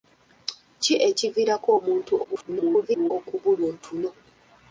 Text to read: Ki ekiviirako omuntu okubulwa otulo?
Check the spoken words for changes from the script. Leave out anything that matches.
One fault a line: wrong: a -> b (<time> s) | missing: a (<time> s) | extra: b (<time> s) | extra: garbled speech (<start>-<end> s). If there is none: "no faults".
extra: garbled speech (2.2-3.1 s)